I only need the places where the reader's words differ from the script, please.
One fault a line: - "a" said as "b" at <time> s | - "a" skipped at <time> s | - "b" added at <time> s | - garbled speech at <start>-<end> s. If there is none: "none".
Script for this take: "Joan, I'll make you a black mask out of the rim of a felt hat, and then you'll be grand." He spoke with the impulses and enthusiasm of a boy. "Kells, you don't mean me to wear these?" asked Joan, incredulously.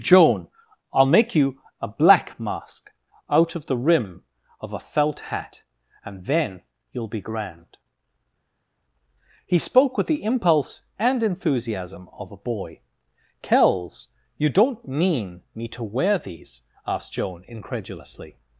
- "impulses" said as "impulse" at 10.2 s